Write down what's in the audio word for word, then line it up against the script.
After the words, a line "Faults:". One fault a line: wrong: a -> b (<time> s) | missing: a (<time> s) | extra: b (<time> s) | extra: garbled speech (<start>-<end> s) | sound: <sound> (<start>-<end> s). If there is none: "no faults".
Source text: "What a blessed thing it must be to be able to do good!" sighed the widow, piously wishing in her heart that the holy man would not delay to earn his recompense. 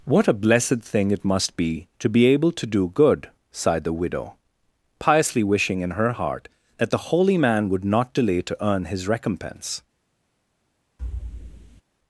"What a blessed thing it must be to be able to do good!" sighed the widow, piously wishing in her heart that the holy man would not delay to earn his recompense.
Faults:
sound: thud (11.0-11.8 s)